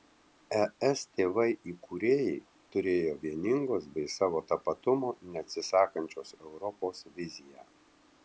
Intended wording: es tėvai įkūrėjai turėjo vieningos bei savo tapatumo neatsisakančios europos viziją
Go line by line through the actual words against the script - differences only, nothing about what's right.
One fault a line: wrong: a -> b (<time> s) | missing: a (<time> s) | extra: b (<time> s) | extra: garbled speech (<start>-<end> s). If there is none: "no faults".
no faults